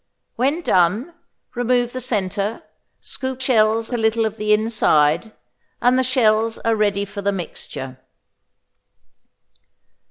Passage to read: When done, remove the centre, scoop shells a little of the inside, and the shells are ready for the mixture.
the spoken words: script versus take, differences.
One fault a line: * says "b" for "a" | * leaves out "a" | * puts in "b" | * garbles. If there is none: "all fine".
all fine